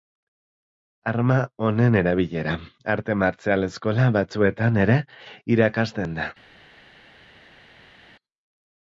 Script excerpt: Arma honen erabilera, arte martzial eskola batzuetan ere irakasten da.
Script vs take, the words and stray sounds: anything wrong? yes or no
no